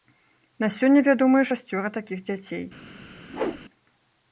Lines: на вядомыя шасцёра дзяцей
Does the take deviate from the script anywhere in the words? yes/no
yes